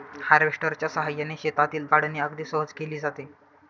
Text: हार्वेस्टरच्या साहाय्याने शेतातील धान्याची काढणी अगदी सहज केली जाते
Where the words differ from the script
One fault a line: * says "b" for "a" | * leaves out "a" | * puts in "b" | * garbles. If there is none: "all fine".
* leaves out "धान्याची"